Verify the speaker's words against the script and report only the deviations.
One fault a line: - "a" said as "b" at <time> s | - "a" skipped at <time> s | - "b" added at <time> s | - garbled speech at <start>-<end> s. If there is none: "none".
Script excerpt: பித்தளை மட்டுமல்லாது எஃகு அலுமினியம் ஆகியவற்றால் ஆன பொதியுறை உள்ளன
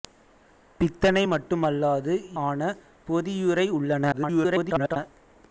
- "எஃகு அலுமினியம் ஆகியவற்றால்" skipped at 2.1 s
- garbled speech at 4.1-5.0 s